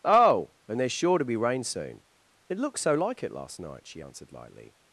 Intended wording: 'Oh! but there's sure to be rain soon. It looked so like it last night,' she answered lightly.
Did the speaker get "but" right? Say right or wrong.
wrong